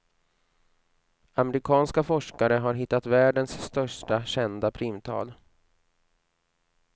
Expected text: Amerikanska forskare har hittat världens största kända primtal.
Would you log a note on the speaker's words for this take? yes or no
no